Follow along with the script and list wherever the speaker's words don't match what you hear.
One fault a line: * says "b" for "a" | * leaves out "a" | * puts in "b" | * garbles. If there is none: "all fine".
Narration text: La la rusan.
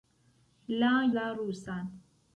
all fine